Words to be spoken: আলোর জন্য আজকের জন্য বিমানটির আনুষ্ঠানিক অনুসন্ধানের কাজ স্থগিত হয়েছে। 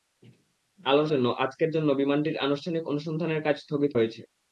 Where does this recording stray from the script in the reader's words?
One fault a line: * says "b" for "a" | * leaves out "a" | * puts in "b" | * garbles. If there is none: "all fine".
all fine